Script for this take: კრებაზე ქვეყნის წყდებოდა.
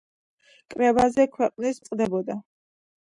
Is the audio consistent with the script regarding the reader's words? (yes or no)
yes